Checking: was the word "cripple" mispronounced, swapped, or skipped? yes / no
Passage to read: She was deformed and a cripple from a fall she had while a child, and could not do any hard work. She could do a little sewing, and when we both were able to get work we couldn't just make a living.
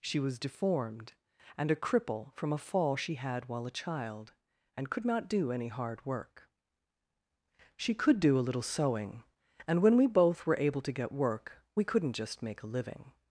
no